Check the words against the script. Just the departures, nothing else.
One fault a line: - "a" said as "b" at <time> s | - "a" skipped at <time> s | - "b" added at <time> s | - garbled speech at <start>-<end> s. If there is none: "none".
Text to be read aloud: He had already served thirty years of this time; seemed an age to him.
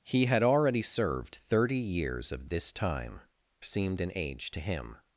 none